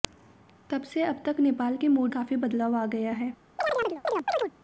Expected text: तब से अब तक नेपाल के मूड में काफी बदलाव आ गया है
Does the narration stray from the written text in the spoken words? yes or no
yes